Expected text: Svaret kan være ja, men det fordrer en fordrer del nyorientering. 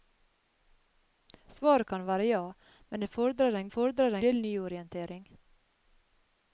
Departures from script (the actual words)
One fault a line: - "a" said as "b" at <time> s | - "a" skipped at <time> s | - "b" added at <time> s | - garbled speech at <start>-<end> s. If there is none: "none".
none